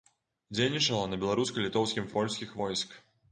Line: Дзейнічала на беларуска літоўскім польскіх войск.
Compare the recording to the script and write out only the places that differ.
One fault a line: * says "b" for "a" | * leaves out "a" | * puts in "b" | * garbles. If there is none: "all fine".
all fine